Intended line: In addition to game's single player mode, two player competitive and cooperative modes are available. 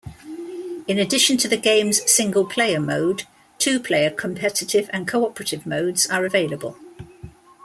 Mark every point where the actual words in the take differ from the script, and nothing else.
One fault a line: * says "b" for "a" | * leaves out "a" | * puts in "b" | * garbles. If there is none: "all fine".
* puts in "the"